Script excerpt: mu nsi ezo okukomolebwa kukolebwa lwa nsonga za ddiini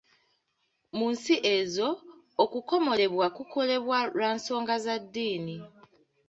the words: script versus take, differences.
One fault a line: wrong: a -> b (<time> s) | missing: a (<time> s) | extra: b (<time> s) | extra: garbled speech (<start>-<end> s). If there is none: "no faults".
no faults